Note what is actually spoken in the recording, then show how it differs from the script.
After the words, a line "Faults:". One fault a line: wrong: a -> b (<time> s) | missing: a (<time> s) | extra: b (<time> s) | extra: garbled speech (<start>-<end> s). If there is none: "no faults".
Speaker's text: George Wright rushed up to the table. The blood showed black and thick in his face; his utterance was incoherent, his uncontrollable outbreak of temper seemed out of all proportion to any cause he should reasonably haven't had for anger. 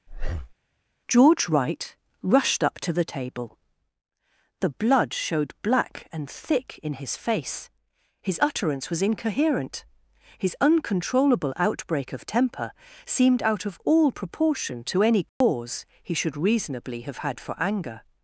George Wright rushed up to the table. The blood showed black and thick in his face; his utterance was incoherent, his uncontrollable outbreak of temper seemed out of all proportion to any cause he should reasonably have had for anger.
Faults:
wrong: haven't -> have (17.0 s)